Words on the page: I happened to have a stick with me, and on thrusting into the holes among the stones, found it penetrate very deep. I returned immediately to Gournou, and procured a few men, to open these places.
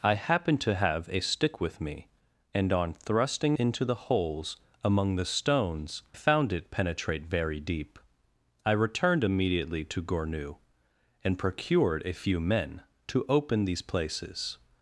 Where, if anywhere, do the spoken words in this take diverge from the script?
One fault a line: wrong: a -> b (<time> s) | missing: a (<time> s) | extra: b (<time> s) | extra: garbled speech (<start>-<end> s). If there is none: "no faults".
no faults